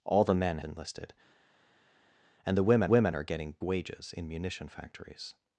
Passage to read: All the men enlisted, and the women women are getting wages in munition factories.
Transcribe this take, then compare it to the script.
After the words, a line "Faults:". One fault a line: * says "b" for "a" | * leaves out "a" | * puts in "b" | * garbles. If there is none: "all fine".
All the men enlisted, and the women women are getting wages in munition factories.
Faults:
all fine